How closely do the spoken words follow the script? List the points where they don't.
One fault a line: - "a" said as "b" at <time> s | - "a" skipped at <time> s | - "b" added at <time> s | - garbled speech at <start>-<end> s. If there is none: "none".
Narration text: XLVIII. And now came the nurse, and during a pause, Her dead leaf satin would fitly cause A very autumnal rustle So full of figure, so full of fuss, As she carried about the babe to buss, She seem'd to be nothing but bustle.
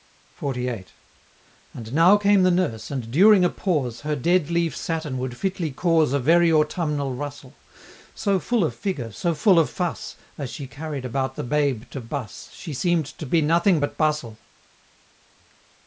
none